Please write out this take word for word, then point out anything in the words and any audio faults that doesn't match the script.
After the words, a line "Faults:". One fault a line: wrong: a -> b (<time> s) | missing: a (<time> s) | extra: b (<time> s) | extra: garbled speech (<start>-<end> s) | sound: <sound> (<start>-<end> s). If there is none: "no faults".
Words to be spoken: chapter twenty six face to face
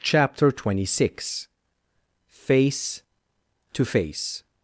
chapter twenty six face to face
Faults:
no faults